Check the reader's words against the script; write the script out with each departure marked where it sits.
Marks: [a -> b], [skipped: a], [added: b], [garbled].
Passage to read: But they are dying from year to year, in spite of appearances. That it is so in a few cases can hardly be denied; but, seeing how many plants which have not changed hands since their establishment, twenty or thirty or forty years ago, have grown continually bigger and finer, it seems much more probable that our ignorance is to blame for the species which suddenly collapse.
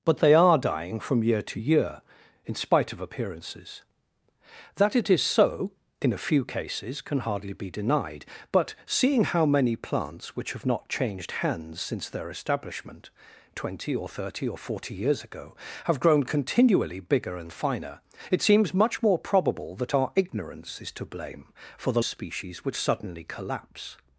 But they are dying from year to year, in spite of appearances. That it is so in a few cases can hardly be denied; but, seeing how many plants which have not changed hands since their establishment, twenty or thirty or forty years ago, have grown continually bigger and finer, it seems much more probable that our ignorance is to blame for the species which suddenly collapse.